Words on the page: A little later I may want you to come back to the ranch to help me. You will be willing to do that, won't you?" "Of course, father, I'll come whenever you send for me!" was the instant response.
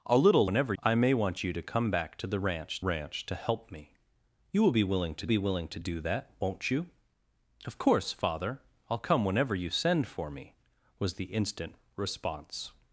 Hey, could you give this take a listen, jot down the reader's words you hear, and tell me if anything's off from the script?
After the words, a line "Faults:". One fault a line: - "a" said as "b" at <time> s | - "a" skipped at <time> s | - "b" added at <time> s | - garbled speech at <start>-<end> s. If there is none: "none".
A little whenever I may want you to come back to the ranch ranch to help me. You will be willing to be willing to do that, won't you?" "Of course, father, I'll come whenever you send for me!" was the instant response.
Faults:
- "later" said as "whenever" at 0.4 s
- "ranch" added at 2.8 s
- "be willing to" added at 5.3 s